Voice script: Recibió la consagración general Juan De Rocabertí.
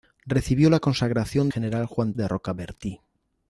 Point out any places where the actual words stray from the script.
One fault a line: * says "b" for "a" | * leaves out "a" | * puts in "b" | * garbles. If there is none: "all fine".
all fine